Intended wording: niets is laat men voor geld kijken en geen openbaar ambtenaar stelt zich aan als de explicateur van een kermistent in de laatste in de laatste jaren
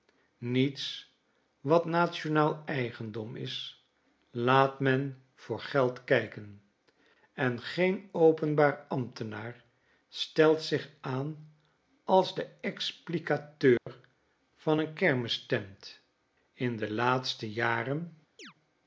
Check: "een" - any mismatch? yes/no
no